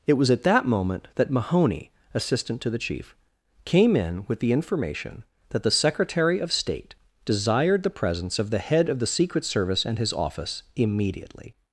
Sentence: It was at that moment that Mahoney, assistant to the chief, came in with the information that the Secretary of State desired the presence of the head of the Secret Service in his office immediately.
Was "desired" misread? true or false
false